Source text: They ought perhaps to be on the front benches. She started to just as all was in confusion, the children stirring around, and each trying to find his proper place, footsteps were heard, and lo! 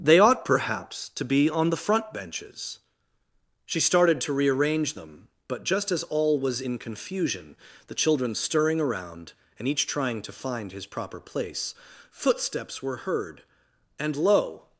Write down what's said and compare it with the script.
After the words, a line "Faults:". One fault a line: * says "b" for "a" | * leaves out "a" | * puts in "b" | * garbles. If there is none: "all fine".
They ought perhaps to be on the front benches. She started to rearrange them, but just as all was in confusion, the children stirring around, and each trying to find his proper place, footsteps were heard, and lo!
Faults:
* puts in "rearrange them but"